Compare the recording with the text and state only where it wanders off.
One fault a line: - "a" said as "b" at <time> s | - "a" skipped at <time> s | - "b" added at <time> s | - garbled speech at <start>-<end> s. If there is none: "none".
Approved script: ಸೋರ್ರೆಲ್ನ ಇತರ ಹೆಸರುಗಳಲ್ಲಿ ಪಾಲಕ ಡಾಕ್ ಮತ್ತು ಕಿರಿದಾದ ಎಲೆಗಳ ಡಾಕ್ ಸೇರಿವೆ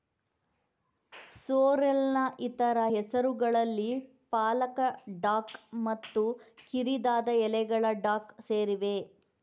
none